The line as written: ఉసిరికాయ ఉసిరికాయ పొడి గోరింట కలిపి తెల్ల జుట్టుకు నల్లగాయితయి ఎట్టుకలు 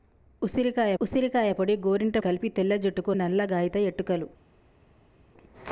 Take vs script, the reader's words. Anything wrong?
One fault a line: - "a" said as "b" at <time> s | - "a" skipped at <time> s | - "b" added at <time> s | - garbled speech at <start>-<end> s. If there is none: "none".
none